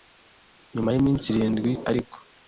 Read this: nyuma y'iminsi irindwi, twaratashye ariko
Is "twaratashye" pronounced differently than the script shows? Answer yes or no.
yes